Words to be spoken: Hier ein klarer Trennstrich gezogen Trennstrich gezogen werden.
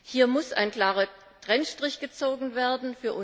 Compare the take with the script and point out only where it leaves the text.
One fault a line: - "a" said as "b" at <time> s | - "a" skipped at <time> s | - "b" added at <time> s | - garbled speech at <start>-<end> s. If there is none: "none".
- "muss" added at 0.3 s
- "Trennstrich gezogen" skipped at 2.5 s